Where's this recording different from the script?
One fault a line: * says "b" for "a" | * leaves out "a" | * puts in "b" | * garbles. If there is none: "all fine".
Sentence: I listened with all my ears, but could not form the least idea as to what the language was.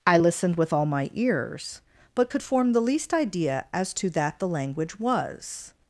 * leaves out "not"
* says "that" for "what"